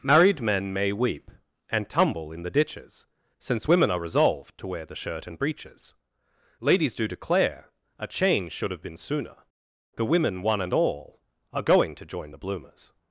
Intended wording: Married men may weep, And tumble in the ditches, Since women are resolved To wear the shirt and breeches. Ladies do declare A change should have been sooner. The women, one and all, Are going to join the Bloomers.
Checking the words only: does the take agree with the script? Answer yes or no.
yes